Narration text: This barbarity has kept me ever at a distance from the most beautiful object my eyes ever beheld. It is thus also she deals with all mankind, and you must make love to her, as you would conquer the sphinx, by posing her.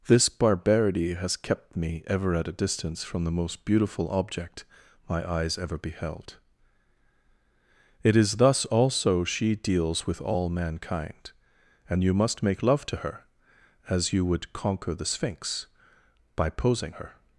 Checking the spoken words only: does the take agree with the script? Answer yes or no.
yes